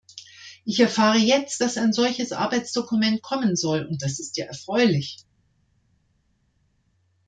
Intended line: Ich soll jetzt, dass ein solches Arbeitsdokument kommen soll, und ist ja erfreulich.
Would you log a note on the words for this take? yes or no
yes